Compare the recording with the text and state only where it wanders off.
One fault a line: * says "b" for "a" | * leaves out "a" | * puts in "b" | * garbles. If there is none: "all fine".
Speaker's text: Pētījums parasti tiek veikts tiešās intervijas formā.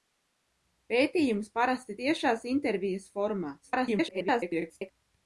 * leaves out "tiek veikts"
* garbles